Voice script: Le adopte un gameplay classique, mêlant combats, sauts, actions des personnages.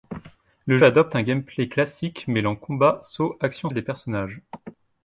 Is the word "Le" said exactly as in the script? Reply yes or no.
yes